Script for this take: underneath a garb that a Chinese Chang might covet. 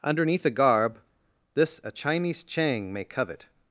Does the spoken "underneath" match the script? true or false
true